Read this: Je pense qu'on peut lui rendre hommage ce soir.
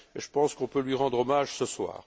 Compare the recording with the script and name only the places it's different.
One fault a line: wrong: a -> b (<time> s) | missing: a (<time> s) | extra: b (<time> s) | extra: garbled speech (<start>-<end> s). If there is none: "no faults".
no faults